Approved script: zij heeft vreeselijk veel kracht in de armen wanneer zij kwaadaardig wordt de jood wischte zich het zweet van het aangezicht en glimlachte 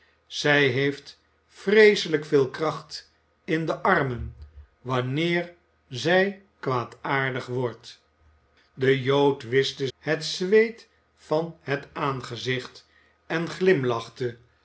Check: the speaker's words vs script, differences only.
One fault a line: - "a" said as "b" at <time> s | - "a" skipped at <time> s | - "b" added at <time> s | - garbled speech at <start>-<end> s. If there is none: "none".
- "zich" skipped at 9.9 s